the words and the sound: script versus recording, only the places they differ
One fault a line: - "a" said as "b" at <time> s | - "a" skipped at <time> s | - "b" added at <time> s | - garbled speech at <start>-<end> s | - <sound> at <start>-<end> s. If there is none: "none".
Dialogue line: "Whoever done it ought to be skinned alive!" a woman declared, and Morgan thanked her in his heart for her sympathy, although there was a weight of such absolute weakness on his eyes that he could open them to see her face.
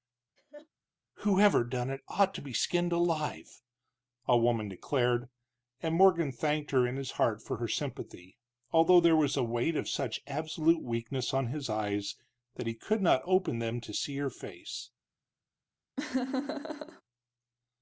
- laugh at 0.4-0.7 s
- "not" added at 13.0 s
- laugh at 16.0-17.0 s